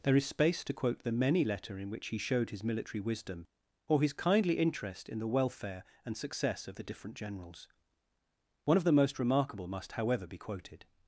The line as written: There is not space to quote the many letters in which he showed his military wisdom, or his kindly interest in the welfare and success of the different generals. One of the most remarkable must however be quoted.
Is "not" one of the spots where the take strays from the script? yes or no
yes